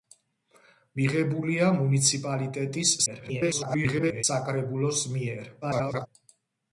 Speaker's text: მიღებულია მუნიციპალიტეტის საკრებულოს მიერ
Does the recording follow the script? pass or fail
fail